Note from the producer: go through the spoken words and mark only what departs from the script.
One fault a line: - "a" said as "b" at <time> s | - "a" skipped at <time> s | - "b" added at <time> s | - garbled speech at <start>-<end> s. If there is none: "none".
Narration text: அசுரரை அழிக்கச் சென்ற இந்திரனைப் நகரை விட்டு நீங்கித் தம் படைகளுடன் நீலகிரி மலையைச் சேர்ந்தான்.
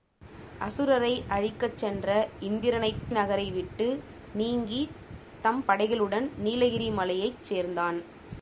none